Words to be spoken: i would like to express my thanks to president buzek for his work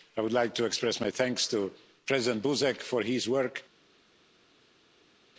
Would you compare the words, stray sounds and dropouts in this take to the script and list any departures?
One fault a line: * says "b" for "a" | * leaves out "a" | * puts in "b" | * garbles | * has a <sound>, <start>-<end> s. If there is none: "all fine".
all fine